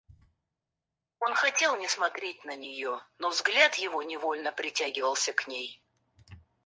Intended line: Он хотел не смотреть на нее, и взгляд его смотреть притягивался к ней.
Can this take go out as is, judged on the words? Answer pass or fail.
fail